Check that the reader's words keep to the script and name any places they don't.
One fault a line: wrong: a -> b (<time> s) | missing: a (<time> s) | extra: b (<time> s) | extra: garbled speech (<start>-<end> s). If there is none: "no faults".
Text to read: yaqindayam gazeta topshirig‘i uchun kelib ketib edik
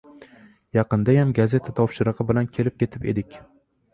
wrong: uchun -> bilan (2.3 s)